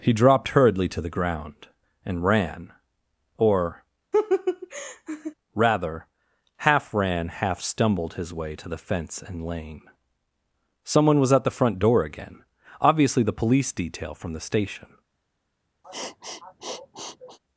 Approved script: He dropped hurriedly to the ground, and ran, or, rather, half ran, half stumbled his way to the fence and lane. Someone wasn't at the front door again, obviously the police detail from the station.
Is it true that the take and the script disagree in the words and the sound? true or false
true